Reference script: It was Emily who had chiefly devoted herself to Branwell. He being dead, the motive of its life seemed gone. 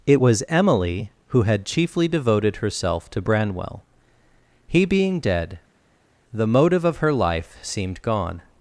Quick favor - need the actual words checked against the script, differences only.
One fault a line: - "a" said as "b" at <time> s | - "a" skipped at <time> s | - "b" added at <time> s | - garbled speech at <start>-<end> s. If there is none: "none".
- "its" said as "her" at 7.0 s